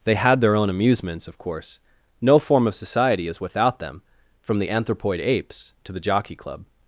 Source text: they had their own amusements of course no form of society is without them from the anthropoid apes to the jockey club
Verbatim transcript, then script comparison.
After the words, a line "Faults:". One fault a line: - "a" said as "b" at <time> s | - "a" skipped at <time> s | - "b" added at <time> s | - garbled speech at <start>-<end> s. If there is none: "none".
they had their own amusements of course no form of society is without them from the anthropoid apes to the jockey club
Faults:
none